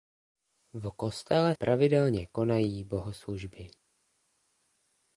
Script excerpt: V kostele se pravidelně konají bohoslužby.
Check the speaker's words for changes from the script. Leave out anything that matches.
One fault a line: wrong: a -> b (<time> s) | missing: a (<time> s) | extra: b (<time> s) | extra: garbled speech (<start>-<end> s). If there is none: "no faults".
missing: se (1.6 s)